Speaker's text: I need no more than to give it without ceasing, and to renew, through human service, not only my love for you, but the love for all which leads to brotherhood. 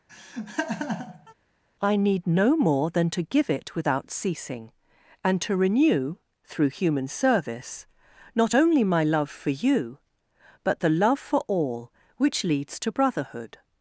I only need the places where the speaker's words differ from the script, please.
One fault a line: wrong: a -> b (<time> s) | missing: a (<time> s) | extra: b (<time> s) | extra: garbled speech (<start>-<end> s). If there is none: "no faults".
no faults